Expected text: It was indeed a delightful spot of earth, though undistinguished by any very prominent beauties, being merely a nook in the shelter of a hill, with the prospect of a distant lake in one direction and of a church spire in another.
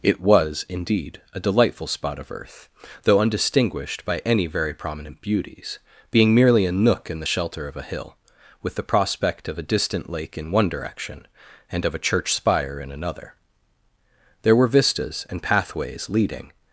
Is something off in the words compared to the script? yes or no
yes